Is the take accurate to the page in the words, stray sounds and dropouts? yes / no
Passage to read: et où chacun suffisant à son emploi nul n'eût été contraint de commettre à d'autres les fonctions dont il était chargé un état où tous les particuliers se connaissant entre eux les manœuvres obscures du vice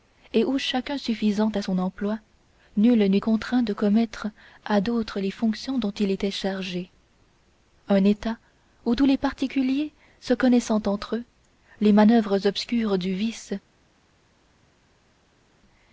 no